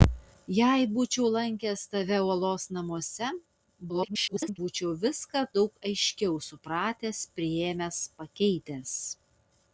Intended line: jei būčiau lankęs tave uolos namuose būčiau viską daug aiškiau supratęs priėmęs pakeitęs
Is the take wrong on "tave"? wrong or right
right